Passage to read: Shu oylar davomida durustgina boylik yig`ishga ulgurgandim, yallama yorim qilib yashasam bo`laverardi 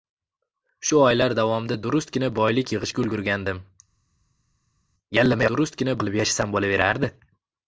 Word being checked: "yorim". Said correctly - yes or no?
no